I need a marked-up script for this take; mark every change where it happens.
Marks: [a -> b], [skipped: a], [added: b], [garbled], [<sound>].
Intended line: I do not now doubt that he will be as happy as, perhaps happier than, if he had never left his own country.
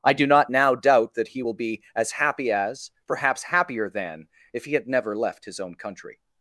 I do not now doubt that he will be as happy as, perhaps happier than, if he had never left his own country.